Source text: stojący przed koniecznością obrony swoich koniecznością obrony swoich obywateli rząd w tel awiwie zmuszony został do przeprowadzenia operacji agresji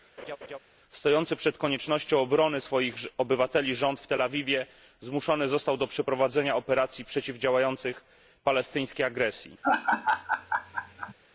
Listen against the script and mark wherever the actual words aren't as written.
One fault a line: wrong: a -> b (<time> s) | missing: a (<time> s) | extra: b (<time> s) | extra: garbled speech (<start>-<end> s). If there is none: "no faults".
missing: koniecznością obrony swoich (3.0 s)
extra: przeciwdziałających palestyńskiej (7.1 s)